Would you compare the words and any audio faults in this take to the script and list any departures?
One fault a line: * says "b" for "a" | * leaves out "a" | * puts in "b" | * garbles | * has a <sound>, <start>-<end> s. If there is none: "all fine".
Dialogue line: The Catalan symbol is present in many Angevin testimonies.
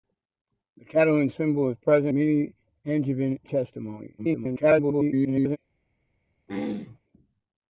* leaves out "in"
* garbles
* has a throat clearing, 6.5-7.0 s